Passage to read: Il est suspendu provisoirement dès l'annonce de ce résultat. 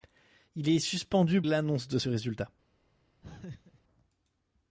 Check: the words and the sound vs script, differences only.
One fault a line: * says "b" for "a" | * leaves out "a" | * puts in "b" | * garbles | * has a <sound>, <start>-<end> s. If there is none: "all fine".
* leaves out "provisoirement dès"
* has a laugh, 3.2-3.8 s